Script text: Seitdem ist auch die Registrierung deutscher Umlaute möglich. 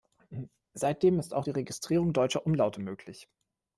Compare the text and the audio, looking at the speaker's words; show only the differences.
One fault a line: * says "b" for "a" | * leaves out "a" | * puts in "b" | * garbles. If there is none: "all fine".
all fine